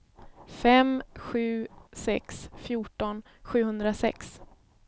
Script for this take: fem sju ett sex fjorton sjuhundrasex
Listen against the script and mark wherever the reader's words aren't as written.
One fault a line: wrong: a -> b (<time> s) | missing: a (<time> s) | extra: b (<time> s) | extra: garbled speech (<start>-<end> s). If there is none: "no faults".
missing: ett (1.7 s)